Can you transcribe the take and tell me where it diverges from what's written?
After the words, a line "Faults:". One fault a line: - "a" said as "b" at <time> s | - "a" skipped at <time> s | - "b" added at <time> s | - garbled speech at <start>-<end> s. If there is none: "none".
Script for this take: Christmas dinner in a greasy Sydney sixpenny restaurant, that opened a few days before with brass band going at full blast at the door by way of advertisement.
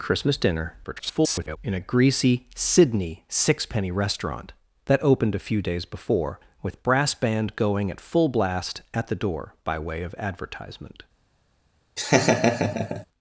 Christmas dinner [garbled] in a greasy Sydney sixpenny restaurant, that opened a few days before with brass band going at full blast at the door by way of advertisement.
Faults:
- garbled speech at 0.8-1.6 s